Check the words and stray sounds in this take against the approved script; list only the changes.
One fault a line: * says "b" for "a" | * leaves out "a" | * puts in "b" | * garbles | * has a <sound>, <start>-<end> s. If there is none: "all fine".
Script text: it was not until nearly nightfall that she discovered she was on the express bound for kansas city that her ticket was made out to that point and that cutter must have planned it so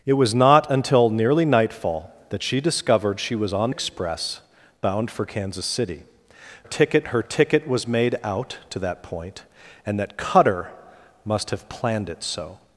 * leaves out "the"
* says "ticket" for "that"